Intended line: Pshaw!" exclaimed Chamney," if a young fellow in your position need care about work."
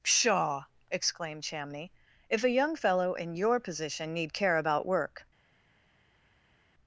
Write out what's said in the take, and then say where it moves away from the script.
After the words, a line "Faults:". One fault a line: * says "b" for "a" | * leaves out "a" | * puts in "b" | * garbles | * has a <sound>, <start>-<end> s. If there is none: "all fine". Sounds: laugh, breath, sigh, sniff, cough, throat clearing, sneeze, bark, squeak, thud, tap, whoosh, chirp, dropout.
Pshaw!" exclaimed Chamney," if a young fellow in your position need care about work."
Faults:
all fine